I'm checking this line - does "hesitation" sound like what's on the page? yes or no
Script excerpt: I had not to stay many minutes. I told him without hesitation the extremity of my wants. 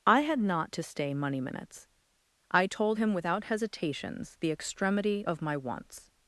no